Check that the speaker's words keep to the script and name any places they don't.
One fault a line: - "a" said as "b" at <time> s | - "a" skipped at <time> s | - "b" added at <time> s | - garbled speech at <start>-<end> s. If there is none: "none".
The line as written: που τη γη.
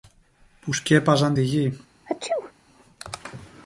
- "σκέπαζαν" added at 0.7 s